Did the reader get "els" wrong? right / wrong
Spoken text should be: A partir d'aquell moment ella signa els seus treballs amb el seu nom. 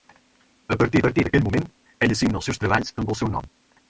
right